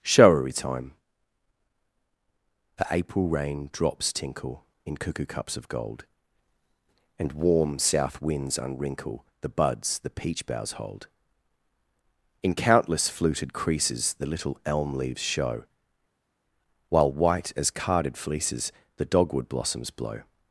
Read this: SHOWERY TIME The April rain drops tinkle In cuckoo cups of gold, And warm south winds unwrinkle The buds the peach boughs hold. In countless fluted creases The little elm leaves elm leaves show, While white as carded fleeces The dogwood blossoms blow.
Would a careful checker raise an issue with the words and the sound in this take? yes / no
yes